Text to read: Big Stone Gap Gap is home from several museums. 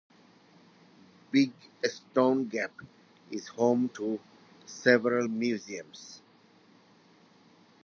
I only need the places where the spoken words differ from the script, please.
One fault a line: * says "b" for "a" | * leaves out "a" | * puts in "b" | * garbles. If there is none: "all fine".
* leaves out "Gap"
* says "to" for "from"